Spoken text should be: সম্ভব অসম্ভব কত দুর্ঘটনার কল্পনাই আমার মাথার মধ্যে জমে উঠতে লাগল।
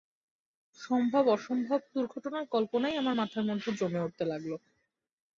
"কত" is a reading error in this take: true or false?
true